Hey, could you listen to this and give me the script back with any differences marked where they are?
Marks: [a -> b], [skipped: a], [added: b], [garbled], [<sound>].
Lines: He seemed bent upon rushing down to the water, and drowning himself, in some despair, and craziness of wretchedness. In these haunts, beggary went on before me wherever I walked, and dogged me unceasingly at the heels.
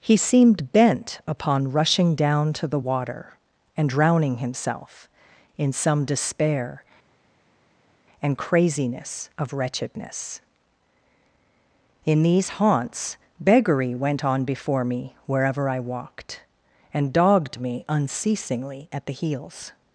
He seemed bent upon rushing down to the water, and drowning himself, in some despair, and craziness of wretchedness. In these haunts, beggary went on before me wherever I walked, and dogged me unceasingly at the heels.